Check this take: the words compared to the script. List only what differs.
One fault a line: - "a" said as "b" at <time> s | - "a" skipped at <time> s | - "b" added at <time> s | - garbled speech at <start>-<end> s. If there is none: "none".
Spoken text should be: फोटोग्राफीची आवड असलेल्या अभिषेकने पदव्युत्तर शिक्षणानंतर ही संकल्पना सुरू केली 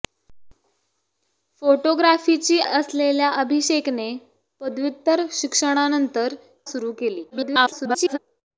- "आवड" skipped at 2.6 s
- "ही संकल्पना" skipped at 6.3 s
- garbled speech at 7.3-8.2 s